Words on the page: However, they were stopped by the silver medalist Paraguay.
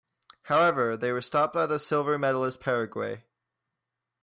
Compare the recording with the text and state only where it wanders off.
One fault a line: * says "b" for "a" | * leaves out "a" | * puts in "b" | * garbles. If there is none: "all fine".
all fine